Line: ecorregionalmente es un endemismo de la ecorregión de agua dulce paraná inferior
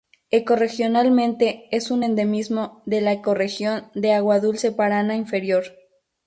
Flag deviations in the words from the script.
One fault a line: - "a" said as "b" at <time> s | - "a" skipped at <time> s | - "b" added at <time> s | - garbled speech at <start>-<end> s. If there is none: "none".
none